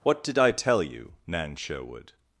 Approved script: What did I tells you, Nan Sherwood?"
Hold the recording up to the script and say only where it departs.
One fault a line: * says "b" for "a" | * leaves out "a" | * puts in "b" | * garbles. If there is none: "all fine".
* says "tell" for "tells"